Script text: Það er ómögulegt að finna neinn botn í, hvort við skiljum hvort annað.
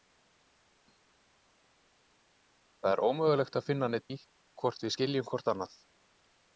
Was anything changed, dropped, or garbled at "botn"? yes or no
yes